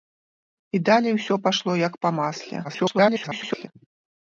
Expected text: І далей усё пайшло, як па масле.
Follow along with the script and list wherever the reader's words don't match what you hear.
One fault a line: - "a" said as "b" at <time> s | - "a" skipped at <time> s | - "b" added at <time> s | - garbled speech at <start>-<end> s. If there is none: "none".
- garbled speech at 2.6-3.7 s